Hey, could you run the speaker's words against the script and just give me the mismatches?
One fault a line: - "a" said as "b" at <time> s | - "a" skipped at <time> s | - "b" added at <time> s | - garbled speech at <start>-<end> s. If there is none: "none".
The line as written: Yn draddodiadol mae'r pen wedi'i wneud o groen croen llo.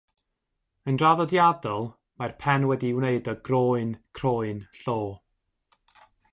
none